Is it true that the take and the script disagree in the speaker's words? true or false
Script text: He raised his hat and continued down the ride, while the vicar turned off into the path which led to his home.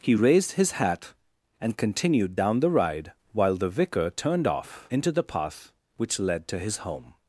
false